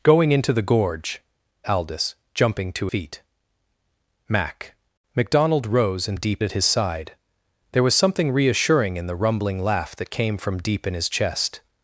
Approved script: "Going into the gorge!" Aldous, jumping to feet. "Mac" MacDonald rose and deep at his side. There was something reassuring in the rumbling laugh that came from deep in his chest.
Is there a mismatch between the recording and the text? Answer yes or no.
no